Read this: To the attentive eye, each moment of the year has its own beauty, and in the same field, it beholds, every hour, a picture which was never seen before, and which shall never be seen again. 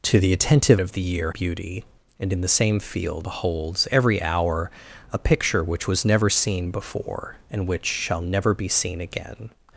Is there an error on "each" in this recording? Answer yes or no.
yes